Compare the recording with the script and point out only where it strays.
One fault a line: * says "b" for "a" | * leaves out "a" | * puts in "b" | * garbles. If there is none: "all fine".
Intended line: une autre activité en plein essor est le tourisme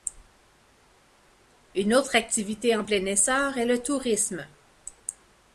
all fine